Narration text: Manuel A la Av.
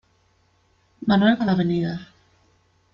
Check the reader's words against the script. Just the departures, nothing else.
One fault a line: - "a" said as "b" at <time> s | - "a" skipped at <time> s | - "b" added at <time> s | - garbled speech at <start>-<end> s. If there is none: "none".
none